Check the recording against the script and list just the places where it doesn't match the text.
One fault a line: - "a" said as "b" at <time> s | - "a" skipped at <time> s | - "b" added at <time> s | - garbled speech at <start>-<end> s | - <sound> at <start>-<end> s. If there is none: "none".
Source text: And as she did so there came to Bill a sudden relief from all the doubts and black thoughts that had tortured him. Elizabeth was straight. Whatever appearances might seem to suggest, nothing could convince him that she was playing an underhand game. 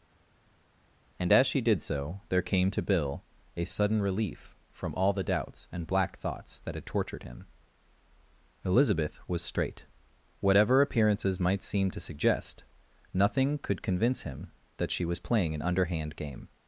none